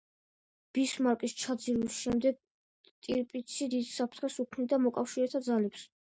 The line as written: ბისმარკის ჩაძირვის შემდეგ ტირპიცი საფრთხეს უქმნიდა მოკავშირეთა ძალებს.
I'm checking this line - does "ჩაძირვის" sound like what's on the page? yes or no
yes